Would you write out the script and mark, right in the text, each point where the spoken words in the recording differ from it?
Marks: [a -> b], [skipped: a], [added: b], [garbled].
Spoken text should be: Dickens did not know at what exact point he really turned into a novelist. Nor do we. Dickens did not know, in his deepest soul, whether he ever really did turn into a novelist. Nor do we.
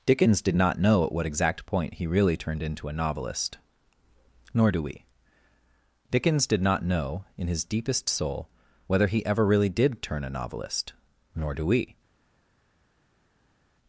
Dickens did not know at what exact point he really turned into a novelist. Nor do we. Dickens did not know, in his deepest soul, whether he ever really did turn [skipped: into] a novelist. Nor do we.